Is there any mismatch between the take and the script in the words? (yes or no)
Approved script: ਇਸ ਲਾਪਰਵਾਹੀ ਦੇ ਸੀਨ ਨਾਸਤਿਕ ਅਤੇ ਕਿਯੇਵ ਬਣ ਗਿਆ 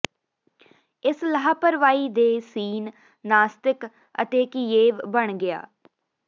no